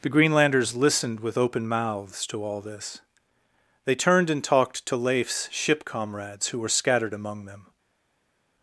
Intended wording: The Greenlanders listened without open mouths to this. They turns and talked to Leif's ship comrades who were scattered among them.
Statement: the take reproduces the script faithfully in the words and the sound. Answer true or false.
false